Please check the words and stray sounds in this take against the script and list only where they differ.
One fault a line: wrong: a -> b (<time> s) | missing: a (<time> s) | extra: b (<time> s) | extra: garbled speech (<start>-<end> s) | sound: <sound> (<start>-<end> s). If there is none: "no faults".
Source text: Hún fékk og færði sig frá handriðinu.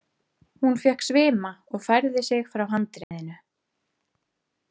extra: svima (1.1 s)
sound: dropout (3.0-3.1 s)